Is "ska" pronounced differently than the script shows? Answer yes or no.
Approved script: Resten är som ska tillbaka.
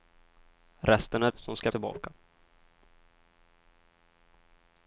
no